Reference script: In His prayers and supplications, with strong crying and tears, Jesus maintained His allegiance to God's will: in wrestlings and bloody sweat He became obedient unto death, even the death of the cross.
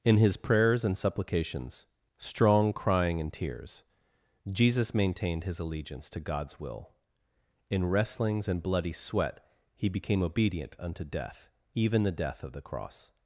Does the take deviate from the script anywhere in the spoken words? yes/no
yes